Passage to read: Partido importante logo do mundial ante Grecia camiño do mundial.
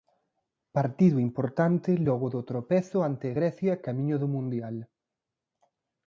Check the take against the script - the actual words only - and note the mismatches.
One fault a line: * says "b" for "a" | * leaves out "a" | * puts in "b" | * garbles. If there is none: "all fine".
* says "tropezo" for "mundial"